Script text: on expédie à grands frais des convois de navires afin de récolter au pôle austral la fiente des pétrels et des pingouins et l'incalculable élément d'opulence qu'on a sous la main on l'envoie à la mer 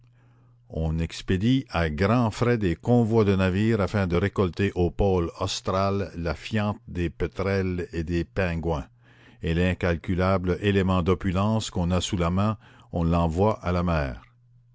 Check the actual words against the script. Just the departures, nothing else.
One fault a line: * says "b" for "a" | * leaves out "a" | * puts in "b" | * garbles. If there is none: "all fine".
all fine